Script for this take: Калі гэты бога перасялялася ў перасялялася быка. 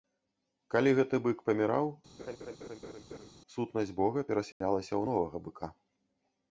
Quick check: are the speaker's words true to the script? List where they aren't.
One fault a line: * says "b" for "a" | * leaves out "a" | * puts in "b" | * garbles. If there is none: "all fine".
* puts in "бык паміраў сутнасць"
* says "новага" for "перасялялася"